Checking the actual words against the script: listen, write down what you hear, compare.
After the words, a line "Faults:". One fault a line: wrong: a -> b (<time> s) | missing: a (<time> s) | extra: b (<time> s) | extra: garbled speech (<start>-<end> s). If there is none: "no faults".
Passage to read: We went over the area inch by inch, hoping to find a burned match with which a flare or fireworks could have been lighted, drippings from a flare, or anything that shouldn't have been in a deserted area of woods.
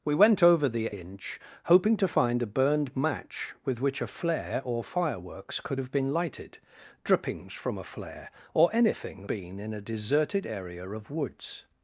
We went over the inch, hoping to find a burned match with which a flare or fireworks could have been lighted, drippings from a flare, or anything been in a deserted area of woods.
Faults:
missing: area (0.9 s)
missing: by inch (1.4 s)
missing: that shouldn't have (9.3 s)